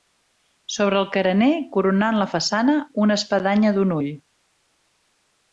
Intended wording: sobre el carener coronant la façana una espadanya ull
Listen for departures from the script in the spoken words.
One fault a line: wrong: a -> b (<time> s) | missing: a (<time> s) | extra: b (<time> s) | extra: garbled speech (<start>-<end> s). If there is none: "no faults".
extra: d'un (3.8 s)